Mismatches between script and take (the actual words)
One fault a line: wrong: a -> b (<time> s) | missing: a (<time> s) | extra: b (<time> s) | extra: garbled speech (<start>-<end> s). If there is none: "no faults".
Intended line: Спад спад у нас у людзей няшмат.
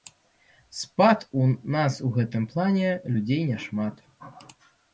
missing: спад (1.2 s)
extra: гэтым плане (2.2 s)